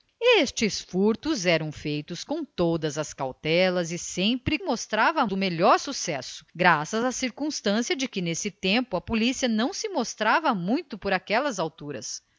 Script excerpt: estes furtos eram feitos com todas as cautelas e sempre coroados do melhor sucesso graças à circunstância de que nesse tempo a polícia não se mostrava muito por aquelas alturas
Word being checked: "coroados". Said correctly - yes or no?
no